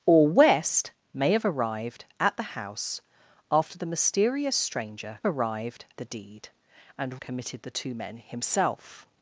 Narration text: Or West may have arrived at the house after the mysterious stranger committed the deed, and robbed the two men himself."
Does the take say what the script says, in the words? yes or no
no